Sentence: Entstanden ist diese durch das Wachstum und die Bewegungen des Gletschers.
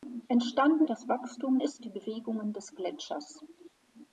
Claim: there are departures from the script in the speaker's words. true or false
true